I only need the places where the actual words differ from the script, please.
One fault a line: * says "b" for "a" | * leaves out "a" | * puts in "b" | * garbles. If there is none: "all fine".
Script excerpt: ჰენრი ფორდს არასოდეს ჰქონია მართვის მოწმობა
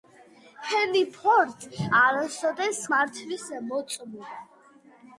* leaves out "ჰქონია"